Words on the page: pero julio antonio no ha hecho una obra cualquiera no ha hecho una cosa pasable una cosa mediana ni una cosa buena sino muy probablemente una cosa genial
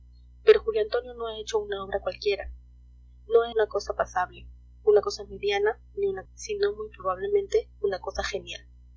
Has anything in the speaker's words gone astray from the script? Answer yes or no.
yes